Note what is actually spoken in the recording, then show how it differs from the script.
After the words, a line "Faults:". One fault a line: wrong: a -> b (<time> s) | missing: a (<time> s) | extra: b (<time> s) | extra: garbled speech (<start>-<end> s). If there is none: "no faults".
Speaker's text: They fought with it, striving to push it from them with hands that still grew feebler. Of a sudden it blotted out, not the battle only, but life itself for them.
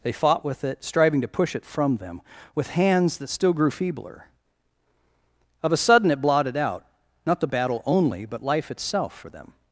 They fought with it, striving to push it from them with hands that still grew feebler. Of a sudden it blotted out, not the battle only, but life itself for them.
Faults:
no faults